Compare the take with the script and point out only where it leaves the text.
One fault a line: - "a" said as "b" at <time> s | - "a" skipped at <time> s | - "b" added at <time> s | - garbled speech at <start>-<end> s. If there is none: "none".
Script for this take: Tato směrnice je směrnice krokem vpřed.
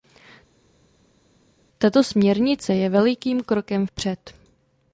- "směrnice" said as "velikým" at 2.9 s